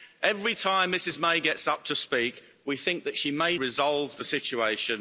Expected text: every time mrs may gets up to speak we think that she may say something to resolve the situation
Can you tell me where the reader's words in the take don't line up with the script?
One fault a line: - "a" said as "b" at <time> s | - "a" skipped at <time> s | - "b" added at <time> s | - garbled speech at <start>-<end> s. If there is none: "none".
- "say something to" skipped at 3.6 s